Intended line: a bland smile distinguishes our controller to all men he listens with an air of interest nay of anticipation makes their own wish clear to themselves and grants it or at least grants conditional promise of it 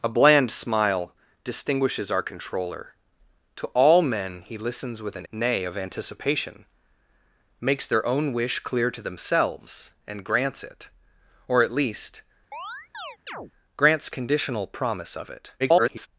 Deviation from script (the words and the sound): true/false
true